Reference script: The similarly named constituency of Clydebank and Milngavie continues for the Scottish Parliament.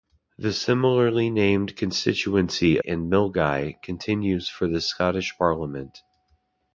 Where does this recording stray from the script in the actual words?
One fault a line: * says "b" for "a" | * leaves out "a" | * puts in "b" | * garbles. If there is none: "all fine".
* leaves out "of Clydebank"